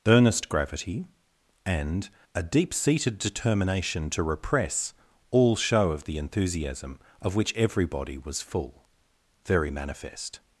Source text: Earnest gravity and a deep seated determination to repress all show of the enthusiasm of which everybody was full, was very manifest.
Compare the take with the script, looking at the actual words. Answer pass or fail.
fail